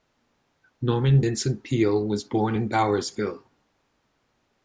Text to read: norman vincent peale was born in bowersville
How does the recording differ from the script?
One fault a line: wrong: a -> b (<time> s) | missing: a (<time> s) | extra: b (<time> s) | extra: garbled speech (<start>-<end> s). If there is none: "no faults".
no faults